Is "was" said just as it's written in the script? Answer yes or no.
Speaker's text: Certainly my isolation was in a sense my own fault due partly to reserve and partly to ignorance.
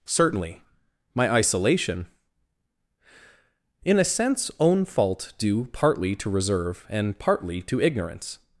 no